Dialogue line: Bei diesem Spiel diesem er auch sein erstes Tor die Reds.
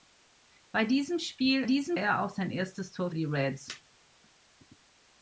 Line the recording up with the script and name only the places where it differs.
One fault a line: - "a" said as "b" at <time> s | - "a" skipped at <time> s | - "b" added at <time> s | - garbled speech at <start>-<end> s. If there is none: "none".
none